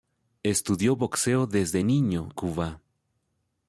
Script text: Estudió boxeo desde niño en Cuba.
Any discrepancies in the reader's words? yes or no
yes